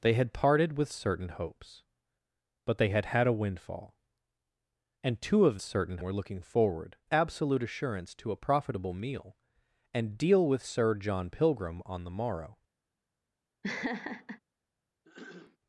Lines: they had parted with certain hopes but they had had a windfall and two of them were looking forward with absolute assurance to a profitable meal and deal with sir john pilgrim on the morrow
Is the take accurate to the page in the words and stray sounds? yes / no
no